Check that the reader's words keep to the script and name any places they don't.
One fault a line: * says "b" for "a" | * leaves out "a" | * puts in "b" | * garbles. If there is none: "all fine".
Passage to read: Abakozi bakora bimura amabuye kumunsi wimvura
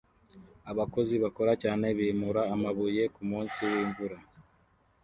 * puts in "cyane"